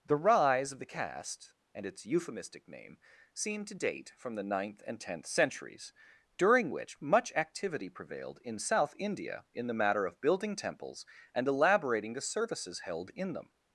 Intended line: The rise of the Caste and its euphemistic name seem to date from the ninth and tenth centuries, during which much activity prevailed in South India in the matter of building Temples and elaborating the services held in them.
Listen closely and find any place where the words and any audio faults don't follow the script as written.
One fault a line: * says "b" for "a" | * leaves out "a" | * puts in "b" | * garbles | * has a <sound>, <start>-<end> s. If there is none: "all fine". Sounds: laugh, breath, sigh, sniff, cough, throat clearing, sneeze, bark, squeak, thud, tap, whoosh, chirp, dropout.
all fine